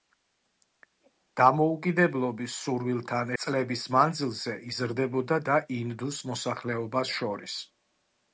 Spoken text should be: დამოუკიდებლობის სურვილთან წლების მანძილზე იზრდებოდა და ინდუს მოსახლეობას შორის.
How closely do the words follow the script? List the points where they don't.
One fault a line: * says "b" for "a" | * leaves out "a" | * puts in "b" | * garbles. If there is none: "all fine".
all fine